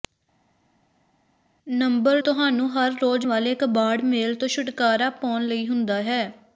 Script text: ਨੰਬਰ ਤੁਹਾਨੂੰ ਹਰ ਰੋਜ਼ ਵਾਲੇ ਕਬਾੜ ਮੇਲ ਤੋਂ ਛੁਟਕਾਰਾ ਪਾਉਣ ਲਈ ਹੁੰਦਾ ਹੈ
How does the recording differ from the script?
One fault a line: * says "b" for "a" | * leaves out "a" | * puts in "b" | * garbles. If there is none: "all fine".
all fine